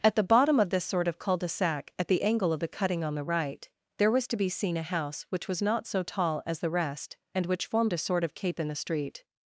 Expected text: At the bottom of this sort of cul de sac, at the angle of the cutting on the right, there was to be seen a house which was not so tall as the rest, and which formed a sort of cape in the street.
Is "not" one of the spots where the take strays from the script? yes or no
no